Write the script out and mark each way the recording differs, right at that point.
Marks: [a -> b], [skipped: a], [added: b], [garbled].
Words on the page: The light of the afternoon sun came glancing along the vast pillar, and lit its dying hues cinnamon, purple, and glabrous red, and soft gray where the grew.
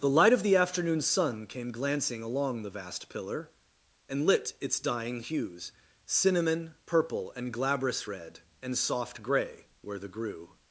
The light of the afternoon sun came glancing along the vast pillar, and lit its dying hues cinnamon, purple, and glabrous red, and soft gray where the grew.